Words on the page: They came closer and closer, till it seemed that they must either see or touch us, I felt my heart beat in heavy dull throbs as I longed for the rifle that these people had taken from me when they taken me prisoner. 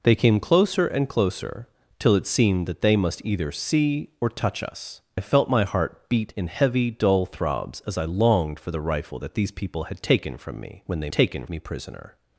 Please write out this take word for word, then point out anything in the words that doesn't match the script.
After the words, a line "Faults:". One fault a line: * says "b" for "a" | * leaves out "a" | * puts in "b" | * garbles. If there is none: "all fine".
They came closer and closer, till it seemed that they must either see or touch us, I felt my heart beat in heavy dull throbs as I longed for the rifle that these people had taken from me when they taken me prisoner.
Faults:
all fine